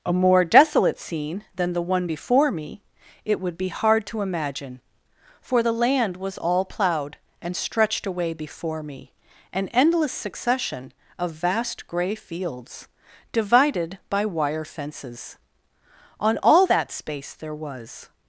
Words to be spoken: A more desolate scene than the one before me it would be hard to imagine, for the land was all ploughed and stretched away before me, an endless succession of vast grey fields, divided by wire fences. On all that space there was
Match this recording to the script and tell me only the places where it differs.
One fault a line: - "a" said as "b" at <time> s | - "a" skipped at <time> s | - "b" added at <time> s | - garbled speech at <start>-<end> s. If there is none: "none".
none